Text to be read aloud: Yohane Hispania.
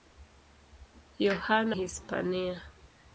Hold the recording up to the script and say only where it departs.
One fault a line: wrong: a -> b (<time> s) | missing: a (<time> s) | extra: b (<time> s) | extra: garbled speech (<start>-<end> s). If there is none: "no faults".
no faults